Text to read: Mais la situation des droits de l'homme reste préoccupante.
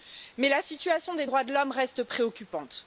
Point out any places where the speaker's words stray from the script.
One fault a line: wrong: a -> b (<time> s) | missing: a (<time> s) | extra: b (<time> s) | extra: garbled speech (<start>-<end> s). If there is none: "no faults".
no faults